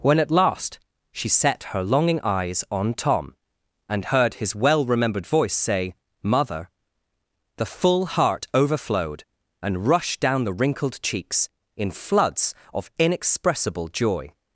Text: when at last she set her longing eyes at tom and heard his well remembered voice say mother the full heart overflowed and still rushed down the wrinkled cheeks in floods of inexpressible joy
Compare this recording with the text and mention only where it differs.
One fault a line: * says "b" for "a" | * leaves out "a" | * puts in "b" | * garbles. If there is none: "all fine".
* says "on" for "at"
* leaves out "still"